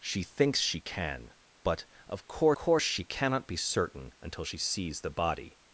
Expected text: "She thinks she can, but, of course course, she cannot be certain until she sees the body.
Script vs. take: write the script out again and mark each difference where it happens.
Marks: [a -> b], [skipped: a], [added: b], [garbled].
"She thinks she can, but, of course course, she cannot be certain until she sees the body.